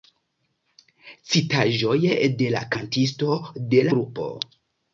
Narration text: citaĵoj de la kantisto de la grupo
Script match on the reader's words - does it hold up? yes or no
no